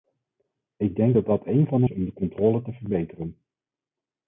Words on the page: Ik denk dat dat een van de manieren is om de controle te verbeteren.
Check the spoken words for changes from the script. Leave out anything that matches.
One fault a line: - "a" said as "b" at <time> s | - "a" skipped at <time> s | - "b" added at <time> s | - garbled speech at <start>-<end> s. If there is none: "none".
- "manieren" skipped at 1.9 s